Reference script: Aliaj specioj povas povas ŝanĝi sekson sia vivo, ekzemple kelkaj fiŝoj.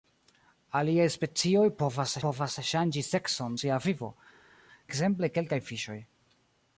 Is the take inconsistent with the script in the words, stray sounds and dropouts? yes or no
no